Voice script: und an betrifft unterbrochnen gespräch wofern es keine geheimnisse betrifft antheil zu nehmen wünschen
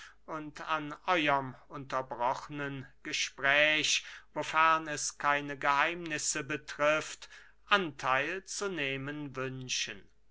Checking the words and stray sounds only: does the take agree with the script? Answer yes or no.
no